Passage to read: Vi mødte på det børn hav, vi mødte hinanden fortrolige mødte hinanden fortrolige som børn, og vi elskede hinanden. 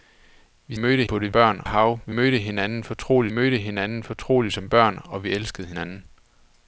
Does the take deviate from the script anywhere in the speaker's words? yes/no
no